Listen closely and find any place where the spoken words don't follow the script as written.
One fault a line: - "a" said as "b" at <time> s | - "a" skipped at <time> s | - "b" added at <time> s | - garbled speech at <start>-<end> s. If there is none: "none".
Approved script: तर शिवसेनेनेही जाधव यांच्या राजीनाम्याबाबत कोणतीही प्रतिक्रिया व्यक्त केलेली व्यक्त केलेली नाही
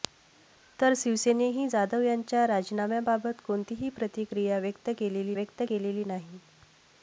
none